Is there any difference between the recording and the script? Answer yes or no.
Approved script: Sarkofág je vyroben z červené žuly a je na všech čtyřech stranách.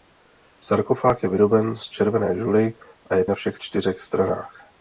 no